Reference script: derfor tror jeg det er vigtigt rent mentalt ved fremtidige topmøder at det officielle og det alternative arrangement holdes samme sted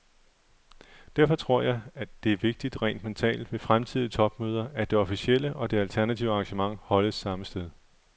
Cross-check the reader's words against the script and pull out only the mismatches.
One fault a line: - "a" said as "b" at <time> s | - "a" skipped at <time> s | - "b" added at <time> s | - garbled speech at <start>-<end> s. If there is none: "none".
none